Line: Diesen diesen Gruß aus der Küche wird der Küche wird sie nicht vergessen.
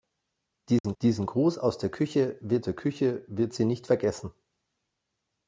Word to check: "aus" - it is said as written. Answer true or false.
true